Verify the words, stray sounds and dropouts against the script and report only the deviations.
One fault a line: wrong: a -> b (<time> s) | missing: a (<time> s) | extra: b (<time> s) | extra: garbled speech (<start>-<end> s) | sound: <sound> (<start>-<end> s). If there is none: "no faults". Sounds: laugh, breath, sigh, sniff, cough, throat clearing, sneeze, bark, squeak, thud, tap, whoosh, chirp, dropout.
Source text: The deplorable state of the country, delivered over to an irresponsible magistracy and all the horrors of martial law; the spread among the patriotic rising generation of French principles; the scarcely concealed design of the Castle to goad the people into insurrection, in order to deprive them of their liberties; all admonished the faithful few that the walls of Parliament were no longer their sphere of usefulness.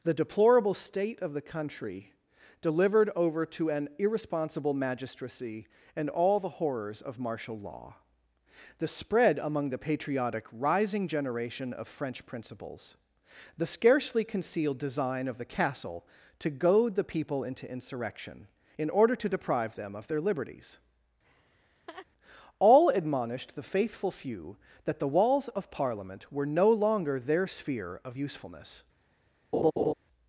sound: laugh (21.2-22.1 s)
sound: laugh (29.5-29.9 s)